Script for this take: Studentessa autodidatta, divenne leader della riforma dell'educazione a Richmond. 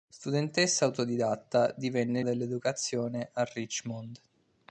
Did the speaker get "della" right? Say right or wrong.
wrong